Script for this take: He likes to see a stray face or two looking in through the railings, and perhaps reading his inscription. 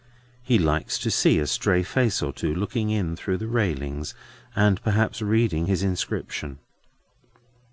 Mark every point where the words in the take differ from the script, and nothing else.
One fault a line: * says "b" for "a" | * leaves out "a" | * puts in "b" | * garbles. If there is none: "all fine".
all fine